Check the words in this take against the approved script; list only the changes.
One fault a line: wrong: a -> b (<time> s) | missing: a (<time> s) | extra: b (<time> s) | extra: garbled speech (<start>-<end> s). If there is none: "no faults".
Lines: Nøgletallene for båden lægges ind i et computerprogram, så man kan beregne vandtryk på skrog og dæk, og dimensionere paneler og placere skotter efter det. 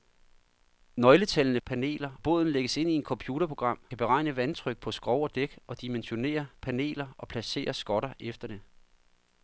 wrong: for -> paneler (1.6 s)
missing: så man (3.8 s)